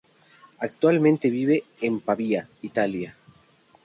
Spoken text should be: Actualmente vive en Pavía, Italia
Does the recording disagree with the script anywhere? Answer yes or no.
no